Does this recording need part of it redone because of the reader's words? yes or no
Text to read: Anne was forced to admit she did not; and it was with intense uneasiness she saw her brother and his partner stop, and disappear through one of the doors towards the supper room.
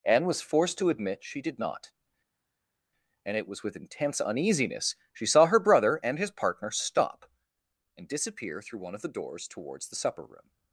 no